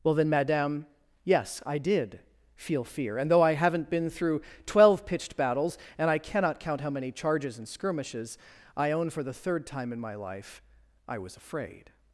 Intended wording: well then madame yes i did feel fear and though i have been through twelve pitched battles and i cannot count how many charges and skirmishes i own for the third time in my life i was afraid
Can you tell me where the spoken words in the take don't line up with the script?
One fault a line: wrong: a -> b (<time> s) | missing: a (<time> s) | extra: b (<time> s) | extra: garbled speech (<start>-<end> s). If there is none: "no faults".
wrong: have -> haven't (3.5 s)